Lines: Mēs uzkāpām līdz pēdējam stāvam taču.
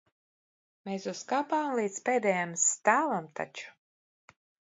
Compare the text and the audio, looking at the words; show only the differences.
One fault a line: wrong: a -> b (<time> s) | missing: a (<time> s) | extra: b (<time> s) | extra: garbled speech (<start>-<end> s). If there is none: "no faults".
no faults